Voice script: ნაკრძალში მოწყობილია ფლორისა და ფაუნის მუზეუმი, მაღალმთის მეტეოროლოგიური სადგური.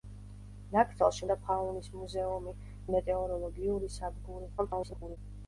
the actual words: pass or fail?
fail